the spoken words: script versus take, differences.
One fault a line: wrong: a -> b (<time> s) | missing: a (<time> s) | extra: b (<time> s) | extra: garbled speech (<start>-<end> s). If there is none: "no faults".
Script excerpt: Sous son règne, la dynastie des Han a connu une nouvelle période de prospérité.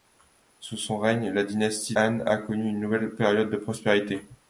missing: des (1.9 s)